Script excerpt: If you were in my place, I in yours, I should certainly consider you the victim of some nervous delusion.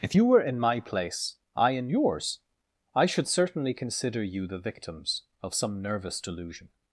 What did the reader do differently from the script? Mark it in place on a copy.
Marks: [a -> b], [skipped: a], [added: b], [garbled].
If you were in my place, I in yours, I should certainly consider you the [victim -> victims] of some nervous delusion.